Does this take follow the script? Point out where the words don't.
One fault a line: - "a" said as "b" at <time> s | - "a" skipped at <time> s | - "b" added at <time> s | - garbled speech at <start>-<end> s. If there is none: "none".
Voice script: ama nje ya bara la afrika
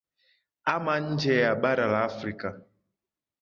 none